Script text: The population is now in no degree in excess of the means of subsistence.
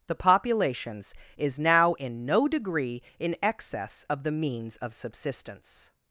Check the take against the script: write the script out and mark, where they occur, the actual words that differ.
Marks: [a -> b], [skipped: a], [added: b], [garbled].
The [population -> populations] is now in no degree in excess of the means of subsistence.